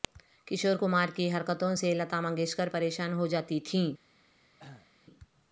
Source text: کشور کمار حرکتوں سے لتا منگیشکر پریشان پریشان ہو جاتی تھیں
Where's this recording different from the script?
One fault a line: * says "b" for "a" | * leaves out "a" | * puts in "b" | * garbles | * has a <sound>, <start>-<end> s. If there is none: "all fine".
* puts in "کی"
* leaves out "پریشان"
* has a cough, 4.6-4.9 s